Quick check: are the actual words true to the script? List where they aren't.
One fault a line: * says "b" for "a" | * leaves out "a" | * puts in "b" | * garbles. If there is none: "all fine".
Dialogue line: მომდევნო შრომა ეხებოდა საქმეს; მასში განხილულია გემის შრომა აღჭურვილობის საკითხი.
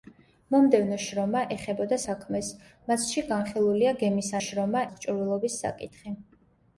all fine